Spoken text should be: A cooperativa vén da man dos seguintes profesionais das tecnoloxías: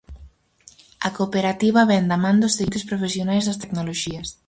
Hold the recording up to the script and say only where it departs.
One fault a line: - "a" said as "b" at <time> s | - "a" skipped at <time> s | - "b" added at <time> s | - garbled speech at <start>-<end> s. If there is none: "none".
none